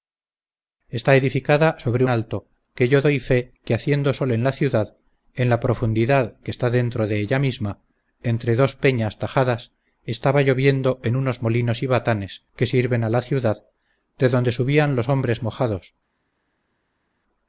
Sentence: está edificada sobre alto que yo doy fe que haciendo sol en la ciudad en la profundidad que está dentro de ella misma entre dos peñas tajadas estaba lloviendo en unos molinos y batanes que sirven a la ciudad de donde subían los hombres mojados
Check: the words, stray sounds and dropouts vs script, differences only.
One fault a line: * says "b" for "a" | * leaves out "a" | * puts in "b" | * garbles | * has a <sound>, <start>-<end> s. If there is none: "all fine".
all fine